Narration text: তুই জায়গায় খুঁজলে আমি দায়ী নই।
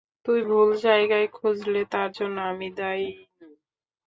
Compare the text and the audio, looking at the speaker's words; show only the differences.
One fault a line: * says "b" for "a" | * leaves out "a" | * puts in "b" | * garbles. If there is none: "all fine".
* puts in "ভুল"
* puts in "তার জন্য"